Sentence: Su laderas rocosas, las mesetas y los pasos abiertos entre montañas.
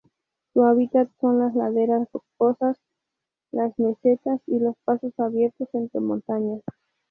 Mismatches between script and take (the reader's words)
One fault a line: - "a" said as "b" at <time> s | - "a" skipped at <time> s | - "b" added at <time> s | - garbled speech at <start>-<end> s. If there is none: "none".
- "hábitat son las" added at 0.7 s